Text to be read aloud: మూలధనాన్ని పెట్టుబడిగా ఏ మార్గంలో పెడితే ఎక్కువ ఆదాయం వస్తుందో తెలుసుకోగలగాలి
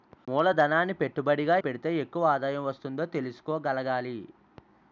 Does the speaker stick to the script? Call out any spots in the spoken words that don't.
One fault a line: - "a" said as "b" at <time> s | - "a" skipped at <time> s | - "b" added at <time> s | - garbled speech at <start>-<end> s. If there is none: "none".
- "ఏ మార్గంలో" skipped at 1.6 s